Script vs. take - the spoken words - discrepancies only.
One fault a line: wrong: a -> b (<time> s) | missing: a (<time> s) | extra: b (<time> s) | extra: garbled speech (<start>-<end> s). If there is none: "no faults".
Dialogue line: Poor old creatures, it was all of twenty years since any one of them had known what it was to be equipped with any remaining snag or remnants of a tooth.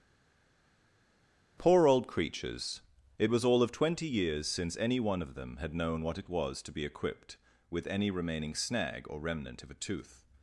wrong: remnants -> remnant (9.2 s)